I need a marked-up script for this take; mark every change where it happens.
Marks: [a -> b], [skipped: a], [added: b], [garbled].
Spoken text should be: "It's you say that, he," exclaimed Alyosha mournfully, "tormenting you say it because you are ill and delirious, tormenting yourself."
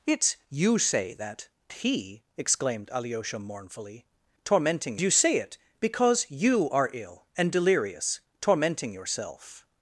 "It's you say that, he," exclaimed Alyosha mournfully, "tormenting you say it because you are ill and delirious, tormenting yourself."